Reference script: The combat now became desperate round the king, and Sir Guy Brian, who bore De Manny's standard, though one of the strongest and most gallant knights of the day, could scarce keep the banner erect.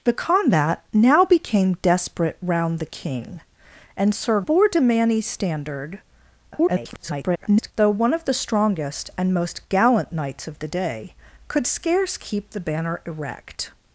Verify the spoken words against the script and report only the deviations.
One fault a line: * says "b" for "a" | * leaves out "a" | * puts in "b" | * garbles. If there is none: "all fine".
* leaves out "Guy Brian who"
* garbles